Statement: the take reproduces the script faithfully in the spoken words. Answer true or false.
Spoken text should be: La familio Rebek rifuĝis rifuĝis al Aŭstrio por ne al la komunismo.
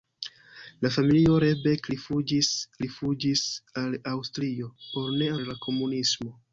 true